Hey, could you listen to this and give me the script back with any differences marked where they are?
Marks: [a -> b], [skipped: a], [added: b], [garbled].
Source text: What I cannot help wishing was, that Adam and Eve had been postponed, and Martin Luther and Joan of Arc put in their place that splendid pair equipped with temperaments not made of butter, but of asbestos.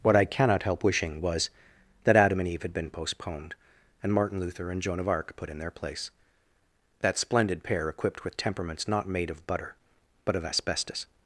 What I cannot help wishing was, that Adam and Eve had been postponed, and Martin Luther and Joan of Arc put in their place that splendid pair equipped with temperaments not made of butter, but of asbestos.